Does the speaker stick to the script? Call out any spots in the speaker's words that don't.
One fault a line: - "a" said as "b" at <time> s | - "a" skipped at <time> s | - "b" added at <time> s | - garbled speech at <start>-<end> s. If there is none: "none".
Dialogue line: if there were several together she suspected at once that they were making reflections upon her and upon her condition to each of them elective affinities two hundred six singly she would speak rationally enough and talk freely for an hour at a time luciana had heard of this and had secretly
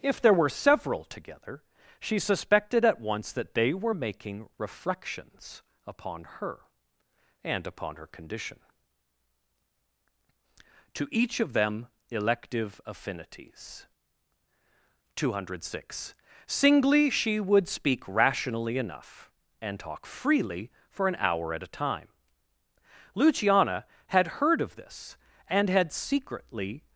none